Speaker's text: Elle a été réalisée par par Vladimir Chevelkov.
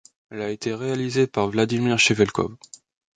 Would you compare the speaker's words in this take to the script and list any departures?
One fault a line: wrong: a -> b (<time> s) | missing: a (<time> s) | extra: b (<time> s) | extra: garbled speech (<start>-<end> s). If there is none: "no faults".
missing: par (1.5 s)